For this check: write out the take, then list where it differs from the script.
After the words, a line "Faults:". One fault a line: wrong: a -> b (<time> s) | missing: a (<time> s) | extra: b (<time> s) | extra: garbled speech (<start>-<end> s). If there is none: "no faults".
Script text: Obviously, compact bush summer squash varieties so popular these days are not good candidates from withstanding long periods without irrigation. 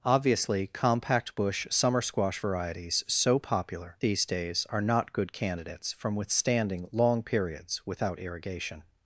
Obviously, compact bush summer squash varieties so popular these days are not good candidates from withstanding long periods without irrigation.
Faults:
no faults